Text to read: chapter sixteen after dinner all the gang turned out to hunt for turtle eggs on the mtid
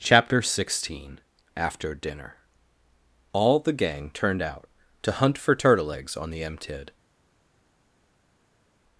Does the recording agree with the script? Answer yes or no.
yes